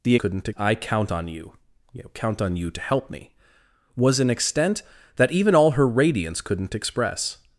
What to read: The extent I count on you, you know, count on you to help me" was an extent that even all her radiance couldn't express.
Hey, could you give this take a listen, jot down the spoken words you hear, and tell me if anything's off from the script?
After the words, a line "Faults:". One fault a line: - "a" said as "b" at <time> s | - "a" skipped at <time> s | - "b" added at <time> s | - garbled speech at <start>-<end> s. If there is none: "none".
The couldn't I count on you, you know, count on you to help me" was an extent that even all her radiance couldn't express.
Faults:
- "extent" said as "couldn't" at 0.1 s